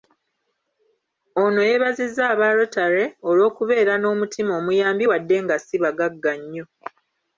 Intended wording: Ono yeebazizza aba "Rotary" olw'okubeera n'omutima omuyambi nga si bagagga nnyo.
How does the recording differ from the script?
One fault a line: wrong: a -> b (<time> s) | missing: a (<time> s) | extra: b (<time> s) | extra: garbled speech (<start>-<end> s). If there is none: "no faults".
extra: wadde (5.1 s)